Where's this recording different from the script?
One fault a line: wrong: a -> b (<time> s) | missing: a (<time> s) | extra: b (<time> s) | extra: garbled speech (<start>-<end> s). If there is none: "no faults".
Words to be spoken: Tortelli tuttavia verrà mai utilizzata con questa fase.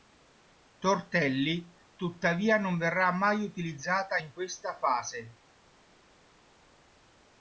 extra: non (2.6 s)
wrong: con -> in (4.2 s)